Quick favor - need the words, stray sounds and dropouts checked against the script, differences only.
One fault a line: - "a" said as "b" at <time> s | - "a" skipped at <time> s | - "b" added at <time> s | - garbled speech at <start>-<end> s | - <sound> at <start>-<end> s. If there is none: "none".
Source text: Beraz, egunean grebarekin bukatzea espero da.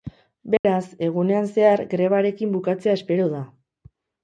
- dropout at 0.6-0.6 s
- "zehar" added at 1.5 s